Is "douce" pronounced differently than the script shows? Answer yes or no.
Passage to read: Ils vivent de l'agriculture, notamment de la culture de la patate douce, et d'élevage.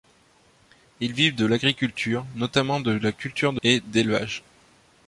yes